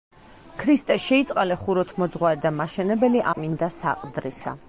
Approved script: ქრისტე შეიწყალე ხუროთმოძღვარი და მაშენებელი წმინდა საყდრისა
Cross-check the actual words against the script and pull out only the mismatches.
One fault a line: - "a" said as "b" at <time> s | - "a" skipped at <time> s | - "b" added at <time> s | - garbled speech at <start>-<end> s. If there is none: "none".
none